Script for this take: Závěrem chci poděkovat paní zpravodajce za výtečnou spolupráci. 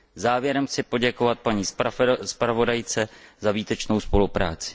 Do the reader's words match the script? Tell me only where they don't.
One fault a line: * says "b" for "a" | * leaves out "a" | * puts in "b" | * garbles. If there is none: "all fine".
all fine